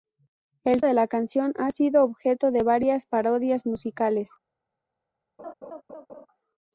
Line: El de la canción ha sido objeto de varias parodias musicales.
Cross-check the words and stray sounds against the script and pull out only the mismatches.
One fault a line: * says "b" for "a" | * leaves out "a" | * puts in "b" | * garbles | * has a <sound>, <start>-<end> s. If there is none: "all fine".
* has a laugh, 5.4-6.3 s